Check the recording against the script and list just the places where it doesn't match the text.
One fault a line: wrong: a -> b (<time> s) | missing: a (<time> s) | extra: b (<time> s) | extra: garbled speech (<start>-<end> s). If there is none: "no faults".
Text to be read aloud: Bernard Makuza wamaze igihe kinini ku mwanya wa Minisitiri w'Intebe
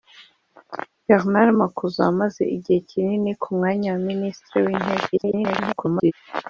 extra: garbled speech (5.1-6.1 s)